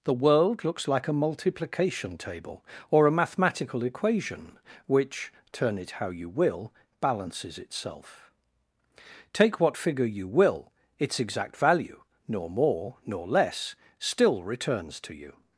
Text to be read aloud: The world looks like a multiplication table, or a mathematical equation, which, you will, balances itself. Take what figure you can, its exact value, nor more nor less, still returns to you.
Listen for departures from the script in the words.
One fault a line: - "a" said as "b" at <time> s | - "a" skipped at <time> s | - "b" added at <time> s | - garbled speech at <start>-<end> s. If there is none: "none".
- "turn it how" added at 5.5 s
- "can" said as "will" at 10.3 s